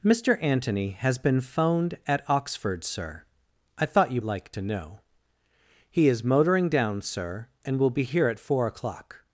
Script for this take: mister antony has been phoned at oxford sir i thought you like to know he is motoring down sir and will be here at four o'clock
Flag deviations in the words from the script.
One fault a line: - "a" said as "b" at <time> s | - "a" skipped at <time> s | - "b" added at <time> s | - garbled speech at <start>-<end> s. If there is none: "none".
none